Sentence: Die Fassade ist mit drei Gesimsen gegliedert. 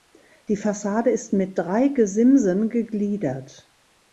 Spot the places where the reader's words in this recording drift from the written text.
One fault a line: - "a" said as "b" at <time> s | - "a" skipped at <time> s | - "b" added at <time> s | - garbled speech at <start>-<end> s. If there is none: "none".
none